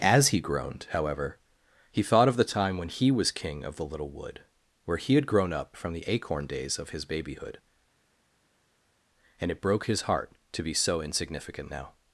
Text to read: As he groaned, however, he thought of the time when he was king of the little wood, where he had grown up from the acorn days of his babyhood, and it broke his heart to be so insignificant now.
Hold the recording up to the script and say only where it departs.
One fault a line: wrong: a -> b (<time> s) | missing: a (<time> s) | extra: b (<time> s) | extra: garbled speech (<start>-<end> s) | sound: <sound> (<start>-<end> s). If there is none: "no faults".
no faults